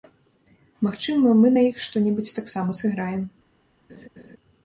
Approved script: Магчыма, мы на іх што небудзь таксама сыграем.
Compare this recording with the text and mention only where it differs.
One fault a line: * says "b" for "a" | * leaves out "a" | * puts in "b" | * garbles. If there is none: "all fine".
all fine